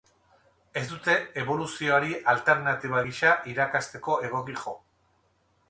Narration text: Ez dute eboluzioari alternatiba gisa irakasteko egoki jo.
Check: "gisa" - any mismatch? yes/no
no